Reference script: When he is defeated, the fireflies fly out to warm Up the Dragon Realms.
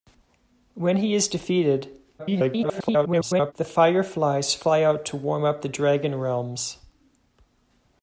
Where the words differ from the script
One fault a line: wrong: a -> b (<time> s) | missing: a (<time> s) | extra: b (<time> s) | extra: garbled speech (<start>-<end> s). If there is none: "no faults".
extra: garbled speech (2.2-3.5 s)